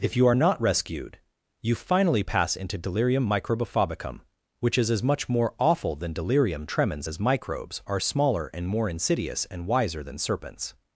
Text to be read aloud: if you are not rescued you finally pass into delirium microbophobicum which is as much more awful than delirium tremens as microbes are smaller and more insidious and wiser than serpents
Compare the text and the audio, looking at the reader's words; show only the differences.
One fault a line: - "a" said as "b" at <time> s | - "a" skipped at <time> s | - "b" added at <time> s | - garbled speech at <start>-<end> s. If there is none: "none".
none